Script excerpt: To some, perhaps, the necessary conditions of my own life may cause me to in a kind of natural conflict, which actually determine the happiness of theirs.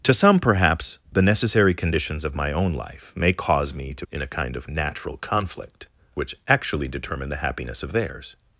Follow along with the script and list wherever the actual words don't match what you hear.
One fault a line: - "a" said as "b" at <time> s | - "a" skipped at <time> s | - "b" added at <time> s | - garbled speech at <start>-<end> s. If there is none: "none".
none